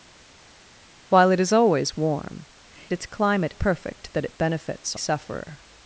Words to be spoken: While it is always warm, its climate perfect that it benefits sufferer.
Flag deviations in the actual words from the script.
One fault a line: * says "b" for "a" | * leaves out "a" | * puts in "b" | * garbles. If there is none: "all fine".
all fine